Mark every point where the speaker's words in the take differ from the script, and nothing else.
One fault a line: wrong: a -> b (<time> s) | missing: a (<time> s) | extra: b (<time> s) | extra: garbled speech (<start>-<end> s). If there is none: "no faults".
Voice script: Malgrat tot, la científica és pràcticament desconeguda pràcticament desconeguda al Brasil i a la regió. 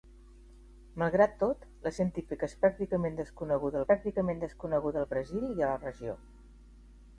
no faults